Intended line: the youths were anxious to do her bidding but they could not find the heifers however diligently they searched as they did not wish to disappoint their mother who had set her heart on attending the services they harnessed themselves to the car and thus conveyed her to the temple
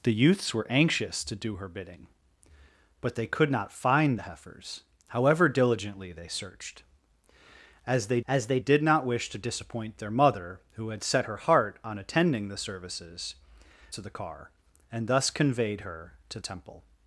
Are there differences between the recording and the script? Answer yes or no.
yes